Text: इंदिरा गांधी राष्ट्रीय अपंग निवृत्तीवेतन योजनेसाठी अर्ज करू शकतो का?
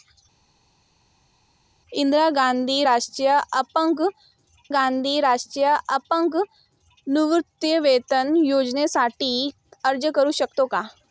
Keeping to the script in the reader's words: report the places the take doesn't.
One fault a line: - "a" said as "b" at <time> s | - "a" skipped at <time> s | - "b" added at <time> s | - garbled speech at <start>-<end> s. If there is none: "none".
- "गांधी राष्ट्रीय अपंग" added at 4.7 s